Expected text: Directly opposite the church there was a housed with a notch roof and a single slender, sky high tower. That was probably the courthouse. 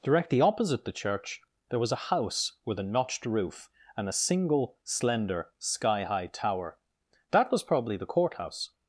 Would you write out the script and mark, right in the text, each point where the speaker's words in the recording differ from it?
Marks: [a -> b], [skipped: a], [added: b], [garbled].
Directly opposite the church there was a [housed -> house] with a [notch -> notched] roof and a single slender, sky high tower. That was probably the courthouse.